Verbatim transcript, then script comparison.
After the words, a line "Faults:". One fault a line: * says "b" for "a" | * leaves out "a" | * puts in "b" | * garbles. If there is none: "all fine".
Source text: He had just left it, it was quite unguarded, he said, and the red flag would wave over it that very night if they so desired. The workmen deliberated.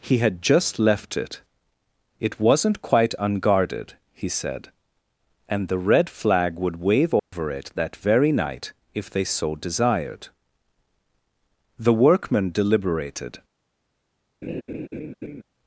He had just left it, it wasn't quite unguarded, he said, and the red flag would wave over it that very night if they so desired. The workmen deliberated.
Faults:
* says "wasn't" for "was"